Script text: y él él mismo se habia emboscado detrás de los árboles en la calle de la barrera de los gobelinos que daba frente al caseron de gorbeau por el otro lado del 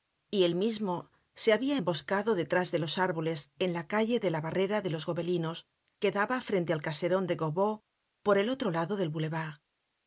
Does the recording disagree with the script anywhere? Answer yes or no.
yes